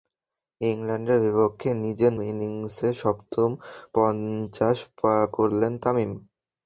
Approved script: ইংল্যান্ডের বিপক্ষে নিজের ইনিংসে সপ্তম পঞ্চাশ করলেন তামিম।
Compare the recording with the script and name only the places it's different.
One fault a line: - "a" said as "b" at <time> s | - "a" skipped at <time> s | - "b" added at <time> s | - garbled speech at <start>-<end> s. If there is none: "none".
none